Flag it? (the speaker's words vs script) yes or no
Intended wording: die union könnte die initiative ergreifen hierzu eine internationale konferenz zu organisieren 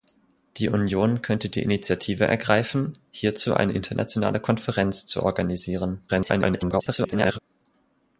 yes